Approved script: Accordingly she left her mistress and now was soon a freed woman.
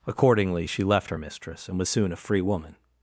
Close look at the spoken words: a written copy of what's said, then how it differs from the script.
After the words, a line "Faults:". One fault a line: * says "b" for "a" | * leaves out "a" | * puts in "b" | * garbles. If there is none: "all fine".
Accordingly she left her mistress and was soon a free woman.
Faults:
* leaves out "now"
* says "free" for "freed"